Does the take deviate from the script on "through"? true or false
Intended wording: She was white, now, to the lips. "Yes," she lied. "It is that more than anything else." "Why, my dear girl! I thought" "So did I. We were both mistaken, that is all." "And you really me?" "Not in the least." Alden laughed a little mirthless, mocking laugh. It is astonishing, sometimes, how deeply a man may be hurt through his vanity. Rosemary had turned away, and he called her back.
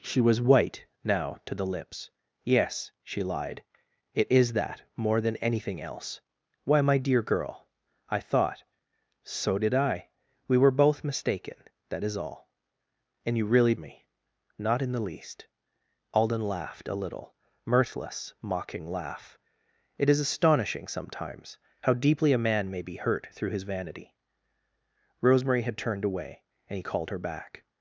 false